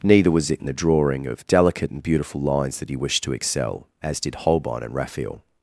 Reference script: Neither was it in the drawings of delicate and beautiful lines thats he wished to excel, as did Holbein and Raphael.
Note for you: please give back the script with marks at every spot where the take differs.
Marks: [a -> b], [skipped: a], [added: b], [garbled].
Neither was it in the [drawings -> drawing] of delicate and beautiful lines [thats -> that] he wished to excel, as did Holbein and Raphael.